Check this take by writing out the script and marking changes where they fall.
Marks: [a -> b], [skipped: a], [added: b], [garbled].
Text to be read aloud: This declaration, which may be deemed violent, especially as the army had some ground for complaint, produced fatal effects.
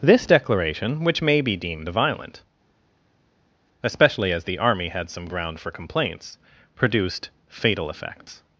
This declaration, which may be deemed violent, especially as the army had some ground for [complaint, -> complaints] produced fatal effects.